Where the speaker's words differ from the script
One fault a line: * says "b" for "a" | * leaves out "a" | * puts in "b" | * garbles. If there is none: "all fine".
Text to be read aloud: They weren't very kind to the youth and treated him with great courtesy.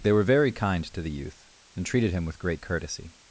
* says "were" for "weren't"